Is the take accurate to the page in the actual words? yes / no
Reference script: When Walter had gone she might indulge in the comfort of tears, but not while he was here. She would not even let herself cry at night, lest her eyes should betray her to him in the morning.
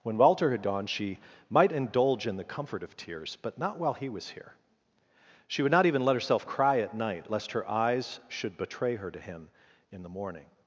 yes